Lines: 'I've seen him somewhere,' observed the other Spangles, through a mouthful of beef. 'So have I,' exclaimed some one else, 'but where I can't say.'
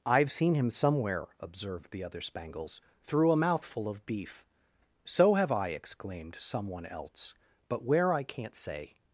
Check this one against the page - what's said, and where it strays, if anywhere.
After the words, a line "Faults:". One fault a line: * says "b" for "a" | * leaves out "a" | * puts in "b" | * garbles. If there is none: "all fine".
'I've seen him somewhere,' observed the other Spangles, through a mouthful of beef. 'So have I,' exclaimed some one else, 'but where I can't say.'
Faults:
all fine